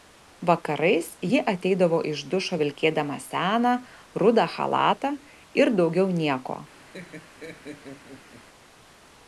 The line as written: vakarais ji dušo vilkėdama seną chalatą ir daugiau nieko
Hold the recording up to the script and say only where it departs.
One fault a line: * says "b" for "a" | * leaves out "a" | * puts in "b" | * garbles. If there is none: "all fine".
* puts in "ateidavo iš"
* puts in "rudą"